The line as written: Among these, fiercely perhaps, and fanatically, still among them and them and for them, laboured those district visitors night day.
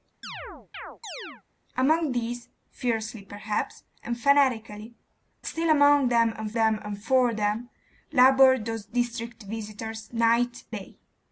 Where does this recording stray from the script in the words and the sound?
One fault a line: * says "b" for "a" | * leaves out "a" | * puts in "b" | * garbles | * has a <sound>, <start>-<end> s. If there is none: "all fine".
* has a chirp, 0.2-1.4 s